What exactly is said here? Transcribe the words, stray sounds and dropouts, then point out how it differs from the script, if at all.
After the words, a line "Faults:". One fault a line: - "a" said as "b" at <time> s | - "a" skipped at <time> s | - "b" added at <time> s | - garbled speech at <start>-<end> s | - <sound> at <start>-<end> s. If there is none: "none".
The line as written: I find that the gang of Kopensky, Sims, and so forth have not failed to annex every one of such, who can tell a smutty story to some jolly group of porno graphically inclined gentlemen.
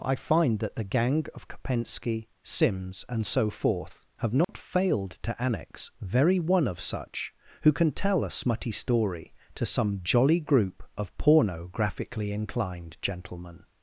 I find that the gang of Kopensky, Sims, and so forth have not failed to annex very one of such, who can tell a smutty story to some jolly group of porno graphically inclined gentlemen.
Faults:
- dropout at 4.4-4.5 s
- "every" said as "very" at 6.0 s